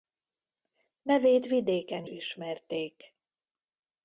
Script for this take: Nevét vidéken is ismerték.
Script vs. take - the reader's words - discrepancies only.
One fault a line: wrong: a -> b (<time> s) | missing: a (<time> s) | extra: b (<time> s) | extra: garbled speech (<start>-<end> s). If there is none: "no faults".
missing: is (2.0 s)